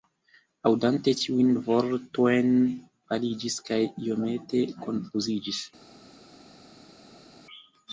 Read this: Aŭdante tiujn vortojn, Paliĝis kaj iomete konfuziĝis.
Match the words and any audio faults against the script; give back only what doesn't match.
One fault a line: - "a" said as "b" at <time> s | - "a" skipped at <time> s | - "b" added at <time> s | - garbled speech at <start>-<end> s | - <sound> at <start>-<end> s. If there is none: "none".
none